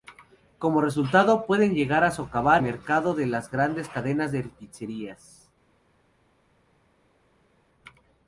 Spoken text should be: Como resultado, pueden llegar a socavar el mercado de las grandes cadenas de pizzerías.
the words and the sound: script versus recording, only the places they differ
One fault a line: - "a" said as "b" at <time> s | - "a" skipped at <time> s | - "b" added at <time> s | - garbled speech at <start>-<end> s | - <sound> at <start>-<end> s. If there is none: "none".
- "el" skipped at 2.6 s